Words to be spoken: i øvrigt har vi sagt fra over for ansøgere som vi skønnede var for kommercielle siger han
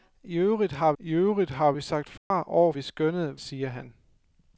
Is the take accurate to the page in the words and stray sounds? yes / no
no